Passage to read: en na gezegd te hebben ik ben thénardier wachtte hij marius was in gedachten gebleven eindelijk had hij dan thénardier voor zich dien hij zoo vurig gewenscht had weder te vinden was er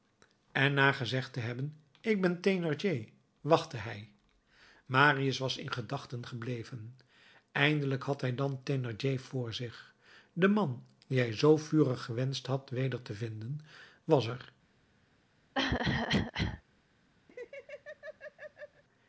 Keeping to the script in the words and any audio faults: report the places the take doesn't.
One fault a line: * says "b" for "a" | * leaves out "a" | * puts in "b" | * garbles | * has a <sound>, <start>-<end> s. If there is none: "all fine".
* puts in "de man"
* has a cough, 15.5-16.6 s
* has a laugh, 17.3-18.8 s